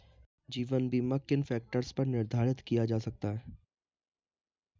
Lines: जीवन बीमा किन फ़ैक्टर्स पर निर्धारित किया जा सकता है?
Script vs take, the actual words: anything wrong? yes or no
no